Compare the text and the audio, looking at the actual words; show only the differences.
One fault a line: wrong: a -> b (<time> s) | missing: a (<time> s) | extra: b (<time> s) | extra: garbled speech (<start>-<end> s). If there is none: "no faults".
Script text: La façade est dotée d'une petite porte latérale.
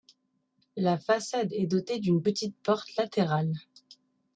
no faults